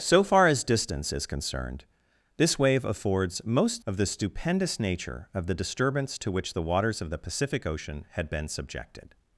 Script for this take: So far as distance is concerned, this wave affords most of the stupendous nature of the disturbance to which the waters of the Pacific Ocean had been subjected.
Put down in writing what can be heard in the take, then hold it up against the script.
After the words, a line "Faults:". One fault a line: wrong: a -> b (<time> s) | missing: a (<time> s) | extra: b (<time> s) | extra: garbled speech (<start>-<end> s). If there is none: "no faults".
So far as distance is concerned, this wave affords most of the stupendous nature of the disturbance to which the waters of the Pacific Ocean had been subjected.
Faults:
no faults